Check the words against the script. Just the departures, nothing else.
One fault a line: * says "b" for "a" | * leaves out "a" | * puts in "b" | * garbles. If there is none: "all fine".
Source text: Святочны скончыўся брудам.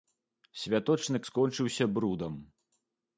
all fine